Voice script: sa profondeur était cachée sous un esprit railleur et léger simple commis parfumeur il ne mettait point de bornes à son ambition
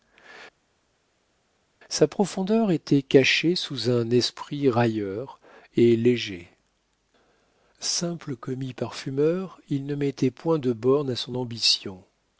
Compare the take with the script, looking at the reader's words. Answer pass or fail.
pass